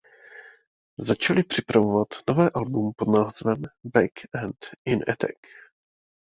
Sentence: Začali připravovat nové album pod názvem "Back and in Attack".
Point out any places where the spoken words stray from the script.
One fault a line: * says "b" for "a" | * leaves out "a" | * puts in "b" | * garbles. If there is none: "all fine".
all fine